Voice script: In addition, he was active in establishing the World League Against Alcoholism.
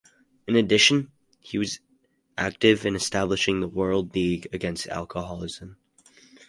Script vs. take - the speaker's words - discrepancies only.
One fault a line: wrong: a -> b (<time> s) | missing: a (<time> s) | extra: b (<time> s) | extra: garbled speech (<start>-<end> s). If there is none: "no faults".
no faults